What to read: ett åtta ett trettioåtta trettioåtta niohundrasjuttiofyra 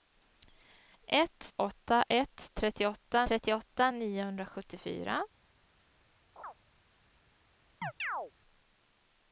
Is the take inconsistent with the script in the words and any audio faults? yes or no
yes